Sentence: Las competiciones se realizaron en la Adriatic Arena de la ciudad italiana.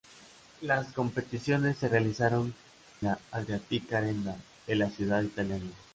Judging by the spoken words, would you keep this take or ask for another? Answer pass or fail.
fail